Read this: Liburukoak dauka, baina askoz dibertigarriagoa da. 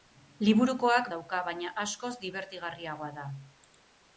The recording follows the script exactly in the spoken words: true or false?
true